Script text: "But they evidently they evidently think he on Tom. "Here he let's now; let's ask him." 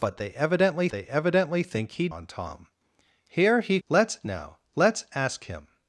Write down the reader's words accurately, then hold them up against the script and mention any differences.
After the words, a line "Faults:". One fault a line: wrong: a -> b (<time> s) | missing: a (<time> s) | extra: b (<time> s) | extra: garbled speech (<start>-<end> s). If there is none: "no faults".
"But they evidently they evidently think he on Tom. "Here he let's now; let's ask him."
Faults:
no faults